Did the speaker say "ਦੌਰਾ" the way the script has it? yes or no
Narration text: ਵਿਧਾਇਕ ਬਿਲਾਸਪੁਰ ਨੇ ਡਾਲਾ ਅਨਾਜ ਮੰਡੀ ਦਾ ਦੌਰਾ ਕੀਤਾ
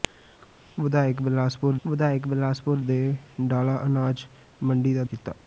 no